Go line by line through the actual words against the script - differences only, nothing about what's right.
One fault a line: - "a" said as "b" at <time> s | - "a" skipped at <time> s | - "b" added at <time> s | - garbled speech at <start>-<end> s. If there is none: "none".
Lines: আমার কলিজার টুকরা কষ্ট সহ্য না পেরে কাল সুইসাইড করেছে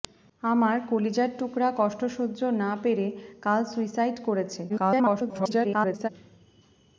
- garbled speech at 4.7-6.1 s